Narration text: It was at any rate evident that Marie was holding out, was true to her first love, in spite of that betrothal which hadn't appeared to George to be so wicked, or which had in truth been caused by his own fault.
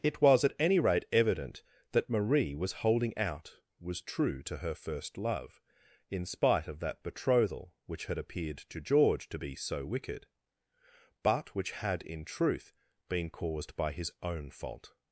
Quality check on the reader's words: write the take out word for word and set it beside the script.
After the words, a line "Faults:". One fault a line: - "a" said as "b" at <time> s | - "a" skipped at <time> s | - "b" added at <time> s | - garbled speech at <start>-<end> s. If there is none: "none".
It was at any rate evident that Marie was holding out, was true to her first love, in spite of that betrothal which had appeared to George to be so wicked, but which had in truth been caused by his own fault.
Faults:
- "hadn't" said as "had" at 8.1 s
- "or" said as "but" at 11.2 s